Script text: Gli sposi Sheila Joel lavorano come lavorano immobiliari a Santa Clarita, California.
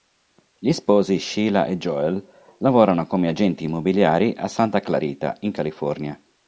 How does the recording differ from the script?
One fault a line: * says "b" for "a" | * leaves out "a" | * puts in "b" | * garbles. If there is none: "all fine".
* puts in "e"
* says "agenti" for "lavorano"
* puts in "in"